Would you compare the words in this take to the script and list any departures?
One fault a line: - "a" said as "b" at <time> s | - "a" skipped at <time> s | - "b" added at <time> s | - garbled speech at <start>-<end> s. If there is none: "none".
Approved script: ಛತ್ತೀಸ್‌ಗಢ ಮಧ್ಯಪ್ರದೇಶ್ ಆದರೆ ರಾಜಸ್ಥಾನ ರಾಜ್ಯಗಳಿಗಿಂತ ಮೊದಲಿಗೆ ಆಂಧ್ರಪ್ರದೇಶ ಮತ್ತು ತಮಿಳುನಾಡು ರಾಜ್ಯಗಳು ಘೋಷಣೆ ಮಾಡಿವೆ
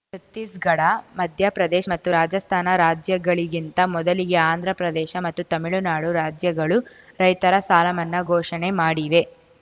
- "ಆದರೆ" said as "ಮತ್ತು" at 1.9 s
- "ರೈತರ ಸಾಲಮನ್ನಾ" added at 7.2 s